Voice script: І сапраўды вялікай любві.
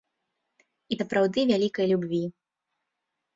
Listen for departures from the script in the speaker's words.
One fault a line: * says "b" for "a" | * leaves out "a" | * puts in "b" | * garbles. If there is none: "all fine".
all fine